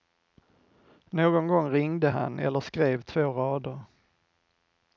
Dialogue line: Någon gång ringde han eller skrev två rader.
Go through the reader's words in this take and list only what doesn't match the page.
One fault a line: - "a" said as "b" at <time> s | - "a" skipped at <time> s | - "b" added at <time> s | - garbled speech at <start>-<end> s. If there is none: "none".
none